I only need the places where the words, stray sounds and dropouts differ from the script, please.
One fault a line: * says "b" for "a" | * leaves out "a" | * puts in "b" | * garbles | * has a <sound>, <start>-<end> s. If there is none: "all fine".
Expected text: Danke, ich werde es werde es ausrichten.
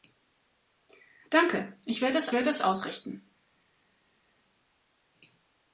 all fine